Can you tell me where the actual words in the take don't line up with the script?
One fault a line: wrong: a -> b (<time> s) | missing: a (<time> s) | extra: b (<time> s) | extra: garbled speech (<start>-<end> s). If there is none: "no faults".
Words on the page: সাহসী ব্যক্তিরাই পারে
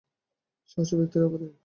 no faults